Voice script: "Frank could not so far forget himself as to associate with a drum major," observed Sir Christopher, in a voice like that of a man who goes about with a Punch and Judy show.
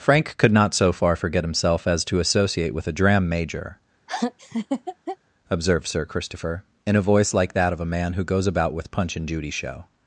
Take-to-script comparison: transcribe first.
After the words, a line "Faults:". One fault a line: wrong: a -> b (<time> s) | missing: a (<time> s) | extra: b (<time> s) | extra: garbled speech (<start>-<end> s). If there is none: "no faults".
"Frank could not so far forget himself as to associate with a dram major," observed Sir Christopher, in a voice like that of a man who goes about with Punch and Judy show.
Faults:
wrong: drum -> dram (2.9 s)
missing: a (8.9 s)